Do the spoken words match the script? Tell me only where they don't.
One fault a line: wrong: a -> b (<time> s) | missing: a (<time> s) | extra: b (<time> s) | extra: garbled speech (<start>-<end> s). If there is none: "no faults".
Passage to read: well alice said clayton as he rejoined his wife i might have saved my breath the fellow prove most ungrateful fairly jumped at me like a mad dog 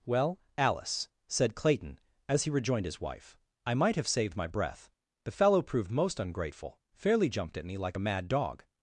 wrong: prove -> proved (5.6 s)